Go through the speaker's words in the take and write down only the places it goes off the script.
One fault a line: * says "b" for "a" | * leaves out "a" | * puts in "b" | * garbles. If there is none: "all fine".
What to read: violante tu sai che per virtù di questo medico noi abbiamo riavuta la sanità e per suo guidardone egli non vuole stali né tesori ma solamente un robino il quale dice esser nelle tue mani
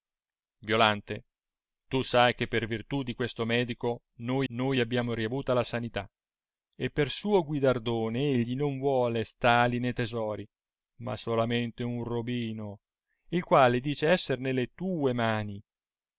* puts in "noi"